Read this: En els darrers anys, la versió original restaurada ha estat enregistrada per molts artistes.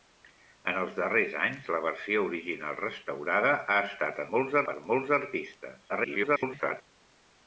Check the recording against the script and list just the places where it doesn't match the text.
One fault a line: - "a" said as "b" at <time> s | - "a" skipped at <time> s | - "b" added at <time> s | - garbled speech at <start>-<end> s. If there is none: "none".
- "enregistrada" said as "molts" at 4.4 s
- garbled speech at 5.9-6.8 s